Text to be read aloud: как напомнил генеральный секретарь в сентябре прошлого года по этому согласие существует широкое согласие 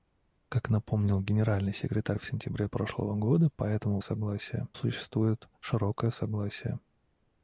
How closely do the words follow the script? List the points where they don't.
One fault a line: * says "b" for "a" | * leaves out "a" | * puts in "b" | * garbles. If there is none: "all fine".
all fine